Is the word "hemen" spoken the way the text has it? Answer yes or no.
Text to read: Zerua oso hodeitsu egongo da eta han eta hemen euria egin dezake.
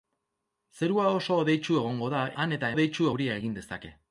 no